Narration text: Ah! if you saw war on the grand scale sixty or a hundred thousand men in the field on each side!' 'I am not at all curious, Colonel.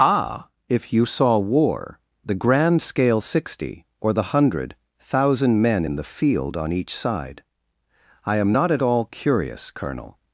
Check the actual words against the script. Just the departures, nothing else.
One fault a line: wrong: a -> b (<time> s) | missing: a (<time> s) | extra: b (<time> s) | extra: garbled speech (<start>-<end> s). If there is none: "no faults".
missing: on (2.0 s)
wrong: a -> the (4.1 s)